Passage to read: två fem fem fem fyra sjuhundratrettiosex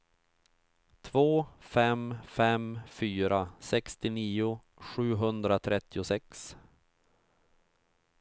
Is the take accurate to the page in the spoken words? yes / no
no